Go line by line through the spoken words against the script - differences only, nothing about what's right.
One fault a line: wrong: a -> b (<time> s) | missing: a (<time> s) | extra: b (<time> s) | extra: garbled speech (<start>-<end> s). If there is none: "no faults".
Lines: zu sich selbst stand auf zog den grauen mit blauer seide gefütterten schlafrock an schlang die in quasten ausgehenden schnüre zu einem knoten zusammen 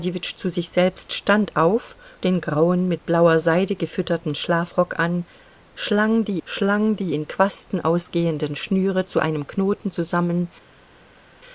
missing: zog (1.9 s)
extra: schlang die (6.4 s)